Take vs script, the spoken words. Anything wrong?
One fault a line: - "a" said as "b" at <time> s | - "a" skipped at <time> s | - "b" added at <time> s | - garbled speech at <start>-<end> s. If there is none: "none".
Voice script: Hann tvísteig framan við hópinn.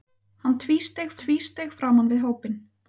- "tvísteig" added at 1.2 s